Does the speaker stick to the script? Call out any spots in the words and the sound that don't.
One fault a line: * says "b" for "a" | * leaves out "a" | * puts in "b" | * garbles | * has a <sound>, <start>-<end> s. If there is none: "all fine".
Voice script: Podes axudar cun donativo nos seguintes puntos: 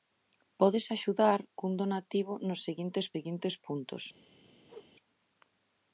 * puts in "seguintes"
* has a whoosh, 4.6-4.9 s